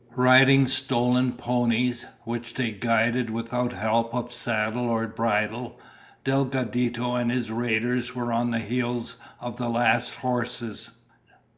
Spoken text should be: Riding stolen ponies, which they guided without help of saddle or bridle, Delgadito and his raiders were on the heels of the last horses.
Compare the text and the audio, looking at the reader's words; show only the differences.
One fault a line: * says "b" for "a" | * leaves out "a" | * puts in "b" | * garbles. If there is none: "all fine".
all fine